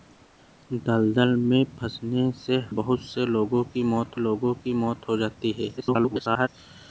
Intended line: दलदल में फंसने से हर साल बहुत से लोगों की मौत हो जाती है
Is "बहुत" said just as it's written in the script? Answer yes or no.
no